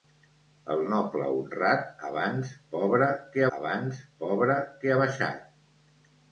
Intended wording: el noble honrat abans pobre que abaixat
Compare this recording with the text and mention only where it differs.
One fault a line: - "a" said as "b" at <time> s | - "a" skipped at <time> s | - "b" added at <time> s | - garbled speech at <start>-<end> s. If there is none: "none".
- "abans pobre que" added at 3.6 s